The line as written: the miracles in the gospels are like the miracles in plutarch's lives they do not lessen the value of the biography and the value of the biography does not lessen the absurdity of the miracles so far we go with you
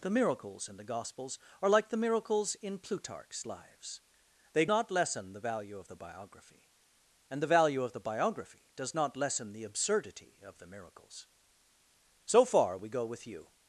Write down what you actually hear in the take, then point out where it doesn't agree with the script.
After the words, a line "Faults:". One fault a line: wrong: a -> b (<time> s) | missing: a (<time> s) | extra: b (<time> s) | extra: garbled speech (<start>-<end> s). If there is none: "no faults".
the miracles in the gospels are like the miracles in plutarch's lives they not lessen the value of the biography and the value of the biography does not lessen the absurdity of the miracles so far we go with you
Faults:
missing: do (4.7 s)